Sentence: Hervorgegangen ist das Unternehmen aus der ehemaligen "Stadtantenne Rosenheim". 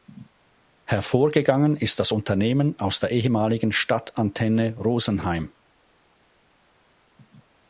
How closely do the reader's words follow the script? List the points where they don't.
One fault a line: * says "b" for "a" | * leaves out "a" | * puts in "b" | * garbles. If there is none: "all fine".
all fine